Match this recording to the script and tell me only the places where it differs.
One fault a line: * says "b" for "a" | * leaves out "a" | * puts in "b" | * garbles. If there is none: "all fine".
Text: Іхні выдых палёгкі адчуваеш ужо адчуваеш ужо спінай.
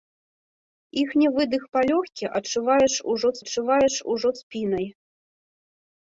all fine